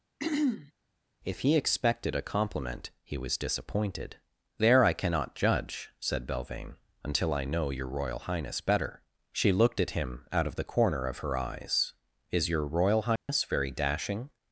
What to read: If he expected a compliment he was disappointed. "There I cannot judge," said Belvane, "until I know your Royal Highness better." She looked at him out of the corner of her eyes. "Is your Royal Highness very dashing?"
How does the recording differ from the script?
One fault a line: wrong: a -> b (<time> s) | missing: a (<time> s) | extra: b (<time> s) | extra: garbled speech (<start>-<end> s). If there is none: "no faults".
no faults